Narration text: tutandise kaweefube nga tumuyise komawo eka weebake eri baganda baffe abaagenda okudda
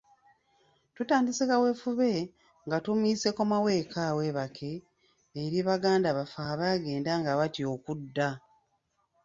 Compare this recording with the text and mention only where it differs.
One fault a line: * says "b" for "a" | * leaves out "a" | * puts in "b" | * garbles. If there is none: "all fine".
* puts in "nga batya"